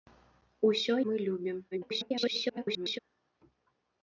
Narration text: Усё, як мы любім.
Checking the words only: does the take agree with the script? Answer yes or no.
no